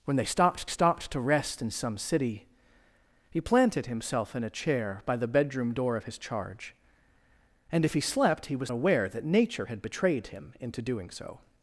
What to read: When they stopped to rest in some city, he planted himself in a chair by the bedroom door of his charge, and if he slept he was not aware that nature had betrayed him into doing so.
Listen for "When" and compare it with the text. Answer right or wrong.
right